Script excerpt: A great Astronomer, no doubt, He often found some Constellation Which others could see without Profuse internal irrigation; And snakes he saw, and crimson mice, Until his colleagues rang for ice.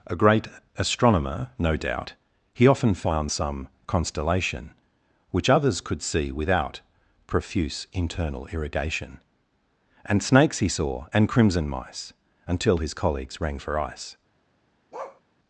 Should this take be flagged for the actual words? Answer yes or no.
no